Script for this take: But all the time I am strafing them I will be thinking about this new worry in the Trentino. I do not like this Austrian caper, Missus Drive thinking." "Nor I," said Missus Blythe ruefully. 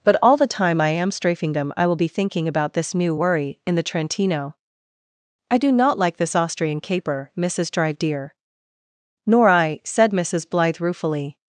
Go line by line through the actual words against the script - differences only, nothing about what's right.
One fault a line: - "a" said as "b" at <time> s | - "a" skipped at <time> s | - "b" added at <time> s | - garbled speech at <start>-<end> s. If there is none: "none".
- "thinking" said as "dear" at 8.0 s